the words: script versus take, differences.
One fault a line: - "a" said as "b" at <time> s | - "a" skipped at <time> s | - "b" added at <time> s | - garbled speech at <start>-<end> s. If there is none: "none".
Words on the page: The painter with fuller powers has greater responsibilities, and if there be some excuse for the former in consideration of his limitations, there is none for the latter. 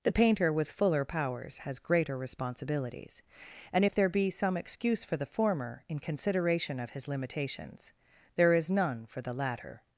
none